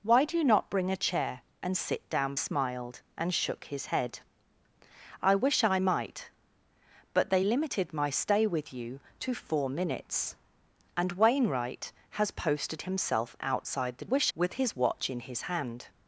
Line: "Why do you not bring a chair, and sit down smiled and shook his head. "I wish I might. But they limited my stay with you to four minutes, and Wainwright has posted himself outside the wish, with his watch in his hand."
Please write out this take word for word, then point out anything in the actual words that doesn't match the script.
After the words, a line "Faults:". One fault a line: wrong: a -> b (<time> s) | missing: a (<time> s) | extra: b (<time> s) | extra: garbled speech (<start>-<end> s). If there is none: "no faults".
"Why do you not bring a chair, and sit down smiled and shook his head. "I wish I might. But they limited my stay with you to four minutes, and Wainwright has posted himself outside the wish, with his watch in his hand."
Faults:
no faults